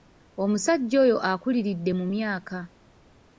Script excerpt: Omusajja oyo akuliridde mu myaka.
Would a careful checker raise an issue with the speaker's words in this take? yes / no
no